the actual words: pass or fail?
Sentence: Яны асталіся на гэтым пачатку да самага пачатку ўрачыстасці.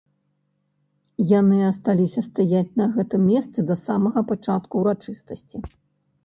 fail